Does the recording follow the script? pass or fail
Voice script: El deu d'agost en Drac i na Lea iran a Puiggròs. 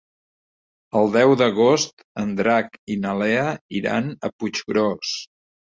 pass